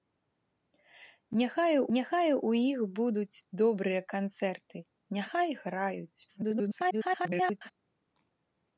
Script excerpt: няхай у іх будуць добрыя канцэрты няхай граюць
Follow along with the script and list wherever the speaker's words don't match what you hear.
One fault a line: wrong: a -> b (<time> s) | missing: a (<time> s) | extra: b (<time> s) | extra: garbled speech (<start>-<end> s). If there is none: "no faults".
extra: няхай (2.0 s)
extra: garbled speech (6.3-7.7 s)